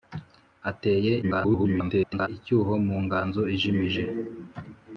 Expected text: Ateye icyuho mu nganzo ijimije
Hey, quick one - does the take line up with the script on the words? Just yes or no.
no